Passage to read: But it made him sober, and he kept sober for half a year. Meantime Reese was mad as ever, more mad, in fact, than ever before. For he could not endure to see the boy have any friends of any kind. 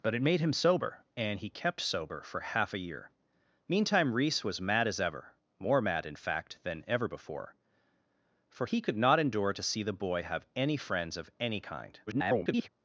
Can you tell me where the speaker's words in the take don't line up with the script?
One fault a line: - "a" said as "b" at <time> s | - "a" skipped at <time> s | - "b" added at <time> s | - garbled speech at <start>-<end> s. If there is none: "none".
- garbled speech at 12.1-12.7 s